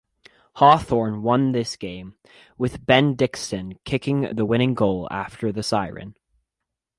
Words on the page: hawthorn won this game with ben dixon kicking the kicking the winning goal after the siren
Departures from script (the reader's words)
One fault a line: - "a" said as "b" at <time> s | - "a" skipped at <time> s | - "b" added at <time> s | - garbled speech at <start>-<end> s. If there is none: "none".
- "kicking the" skipped at 4.5 s